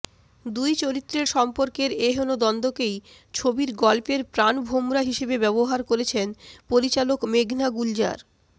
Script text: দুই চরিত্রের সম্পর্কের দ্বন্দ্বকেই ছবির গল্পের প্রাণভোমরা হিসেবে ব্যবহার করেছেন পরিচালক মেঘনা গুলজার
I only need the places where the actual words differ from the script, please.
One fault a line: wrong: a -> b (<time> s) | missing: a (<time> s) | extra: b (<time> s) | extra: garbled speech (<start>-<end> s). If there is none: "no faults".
extra: এহেন (2.1 s)